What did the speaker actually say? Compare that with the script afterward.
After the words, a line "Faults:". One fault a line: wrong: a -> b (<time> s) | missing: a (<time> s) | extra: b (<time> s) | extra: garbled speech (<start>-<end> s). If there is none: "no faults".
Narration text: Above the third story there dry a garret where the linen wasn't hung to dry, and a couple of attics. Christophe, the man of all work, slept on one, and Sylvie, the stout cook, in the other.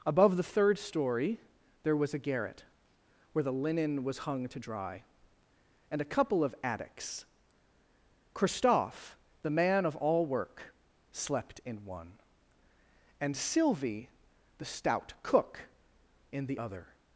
Above the third story there was a garret where the linen was hung to dry, and a couple of attics. Christophe, the man of all work, slept in one, and Sylvie, the stout cook, in the other.
Faults:
wrong: dry -> was (1.9 s)
wrong: wasn't -> was (4.0 s)
wrong: on -> in (11.7 s)